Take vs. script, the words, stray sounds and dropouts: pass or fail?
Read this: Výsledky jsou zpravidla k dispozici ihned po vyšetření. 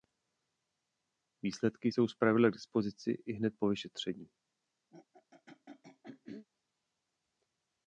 fail